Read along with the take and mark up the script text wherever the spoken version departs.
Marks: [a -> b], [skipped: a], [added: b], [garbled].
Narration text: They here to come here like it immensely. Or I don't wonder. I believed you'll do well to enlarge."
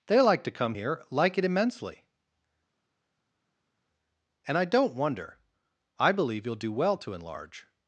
They [here -> like] to come here like it immensely. [Or -> And] I don't wonder. I [believed -> believe] you'll do well to enlarge."